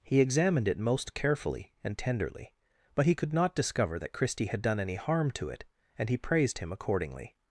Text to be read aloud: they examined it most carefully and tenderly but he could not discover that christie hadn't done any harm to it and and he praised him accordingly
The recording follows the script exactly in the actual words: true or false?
false